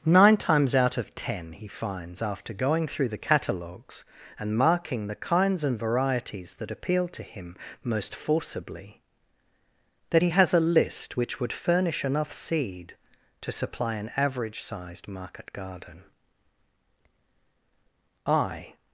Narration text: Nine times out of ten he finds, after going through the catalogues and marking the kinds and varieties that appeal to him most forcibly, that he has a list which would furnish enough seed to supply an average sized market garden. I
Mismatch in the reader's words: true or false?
false